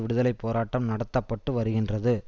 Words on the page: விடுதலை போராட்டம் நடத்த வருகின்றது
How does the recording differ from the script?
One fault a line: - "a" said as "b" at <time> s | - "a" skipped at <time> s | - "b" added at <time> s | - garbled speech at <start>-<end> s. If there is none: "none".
- "பட்டு" added at 1.2 s